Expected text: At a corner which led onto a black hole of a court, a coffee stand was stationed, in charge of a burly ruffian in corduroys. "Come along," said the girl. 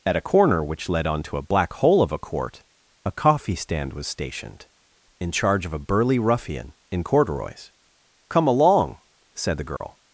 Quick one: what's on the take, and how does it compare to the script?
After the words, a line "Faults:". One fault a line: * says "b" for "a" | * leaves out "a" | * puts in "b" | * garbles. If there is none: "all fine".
At a corner which led onto a black hole of a court, a coffee stand was stationed, in charge of a burly ruffian in corduroys. "Come along," said the girl.
Faults:
all fine